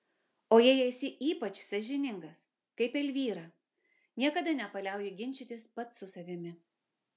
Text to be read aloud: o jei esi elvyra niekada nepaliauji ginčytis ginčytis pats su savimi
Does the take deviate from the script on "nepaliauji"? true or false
false